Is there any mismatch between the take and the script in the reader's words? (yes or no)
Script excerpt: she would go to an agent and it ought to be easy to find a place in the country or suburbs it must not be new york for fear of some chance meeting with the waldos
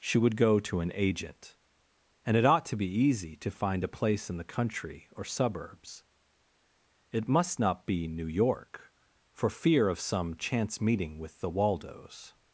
no